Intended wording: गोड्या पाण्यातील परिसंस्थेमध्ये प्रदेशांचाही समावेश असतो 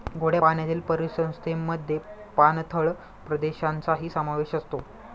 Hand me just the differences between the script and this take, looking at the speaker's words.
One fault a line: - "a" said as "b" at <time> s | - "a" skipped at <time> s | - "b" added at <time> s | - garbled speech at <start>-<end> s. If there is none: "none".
- "पाणथळ" added at 2.4 s